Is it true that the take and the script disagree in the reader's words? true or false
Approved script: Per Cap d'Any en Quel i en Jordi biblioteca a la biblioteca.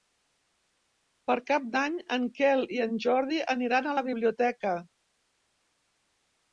true